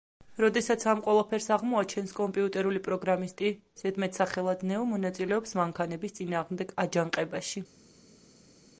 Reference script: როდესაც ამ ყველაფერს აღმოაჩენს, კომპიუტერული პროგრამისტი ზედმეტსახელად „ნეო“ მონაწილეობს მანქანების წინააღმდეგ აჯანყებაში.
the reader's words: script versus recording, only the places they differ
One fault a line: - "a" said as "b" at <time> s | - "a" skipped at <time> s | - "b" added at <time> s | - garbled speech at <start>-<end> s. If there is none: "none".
none